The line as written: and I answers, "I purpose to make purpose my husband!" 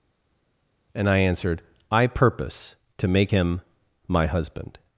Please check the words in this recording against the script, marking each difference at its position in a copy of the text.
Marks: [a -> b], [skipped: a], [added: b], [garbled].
and I [answers, -> answered] "I purpose to make [purpose -> him] my husband!"